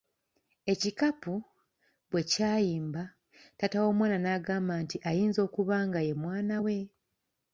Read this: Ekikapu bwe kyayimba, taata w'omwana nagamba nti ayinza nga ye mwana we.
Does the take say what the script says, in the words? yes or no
no